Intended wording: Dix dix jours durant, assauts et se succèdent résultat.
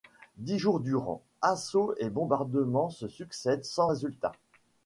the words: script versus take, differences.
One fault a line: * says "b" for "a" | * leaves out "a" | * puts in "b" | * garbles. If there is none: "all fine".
* leaves out "dix"
* puts in "bombardements"
* puts in "sans"